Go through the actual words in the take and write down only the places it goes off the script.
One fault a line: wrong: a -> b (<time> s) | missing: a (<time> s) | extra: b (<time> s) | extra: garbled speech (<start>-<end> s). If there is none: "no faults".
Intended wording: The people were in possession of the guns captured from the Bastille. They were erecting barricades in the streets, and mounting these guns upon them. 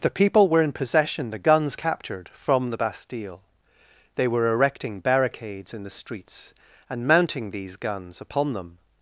missing: of (1.3 s)